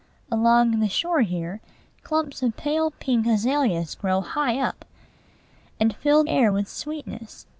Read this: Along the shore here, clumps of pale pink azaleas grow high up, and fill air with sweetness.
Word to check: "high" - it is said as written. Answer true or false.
true